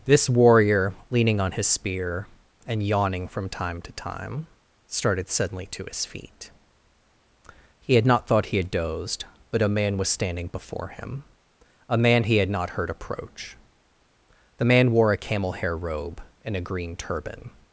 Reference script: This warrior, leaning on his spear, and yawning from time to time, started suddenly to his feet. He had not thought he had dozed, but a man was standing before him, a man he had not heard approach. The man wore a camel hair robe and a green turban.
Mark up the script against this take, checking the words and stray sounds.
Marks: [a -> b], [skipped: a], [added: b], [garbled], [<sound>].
This warrior, leaning on his spear, and yawning from time to time, started suddenly to his feet. He had not thought he had dozed, but a man was standing before him, a man he had not heard approach. The man wore a camel hair robe and a green turban.